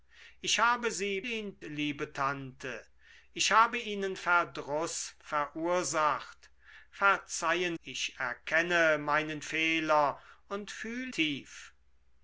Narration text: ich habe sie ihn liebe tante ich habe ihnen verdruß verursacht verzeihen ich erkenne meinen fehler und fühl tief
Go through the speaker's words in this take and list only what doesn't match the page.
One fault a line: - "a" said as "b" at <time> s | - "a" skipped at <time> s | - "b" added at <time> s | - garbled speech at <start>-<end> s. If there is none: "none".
none